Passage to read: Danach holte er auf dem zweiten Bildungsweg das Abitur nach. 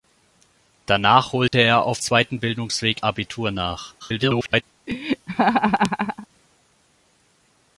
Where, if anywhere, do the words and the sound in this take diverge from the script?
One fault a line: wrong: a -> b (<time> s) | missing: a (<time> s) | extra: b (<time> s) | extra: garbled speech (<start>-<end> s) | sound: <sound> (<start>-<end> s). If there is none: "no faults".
sound: dropout (1.5-1.5 s)
missing: dem (2.0 s)
missing: das (3.0 s)
extra: garbled speech (4.0-4.6 s)
sound: laugh (4.9-6.3 s)